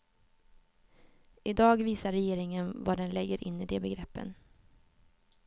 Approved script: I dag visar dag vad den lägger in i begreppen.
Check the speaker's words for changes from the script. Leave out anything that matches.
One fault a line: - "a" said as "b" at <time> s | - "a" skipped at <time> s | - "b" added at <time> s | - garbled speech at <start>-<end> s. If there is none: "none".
- "dag" said as "regeringen" at 2.1 s
- "de" added at 3.6 s